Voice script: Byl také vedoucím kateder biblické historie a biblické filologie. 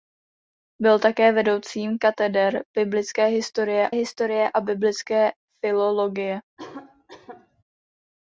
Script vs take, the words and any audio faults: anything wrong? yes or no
yes